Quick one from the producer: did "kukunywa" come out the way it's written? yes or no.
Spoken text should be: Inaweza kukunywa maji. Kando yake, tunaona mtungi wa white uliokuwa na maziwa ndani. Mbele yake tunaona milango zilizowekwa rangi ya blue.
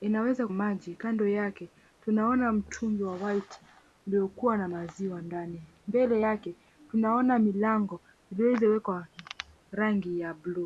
no